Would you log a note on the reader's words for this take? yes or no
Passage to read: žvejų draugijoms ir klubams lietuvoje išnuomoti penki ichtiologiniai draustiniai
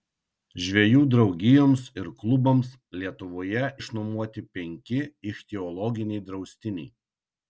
no